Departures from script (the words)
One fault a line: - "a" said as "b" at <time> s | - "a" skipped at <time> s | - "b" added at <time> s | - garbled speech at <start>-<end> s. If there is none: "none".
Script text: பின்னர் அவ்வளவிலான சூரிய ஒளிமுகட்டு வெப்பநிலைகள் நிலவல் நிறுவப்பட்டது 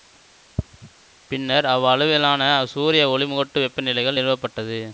- "நிலவல்" skipped at 4.2 s